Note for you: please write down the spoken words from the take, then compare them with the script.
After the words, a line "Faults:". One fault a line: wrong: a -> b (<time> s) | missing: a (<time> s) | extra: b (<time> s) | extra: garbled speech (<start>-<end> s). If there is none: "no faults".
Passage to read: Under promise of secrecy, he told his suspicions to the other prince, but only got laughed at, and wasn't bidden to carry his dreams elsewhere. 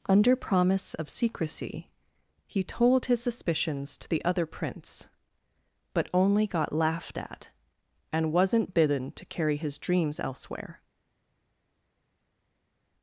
Under promise of secrecy, he told his suspicions to the other prince, but only got laughed at, and wasn't bidden to carry his dreams elsewhere.
Faults:
no faults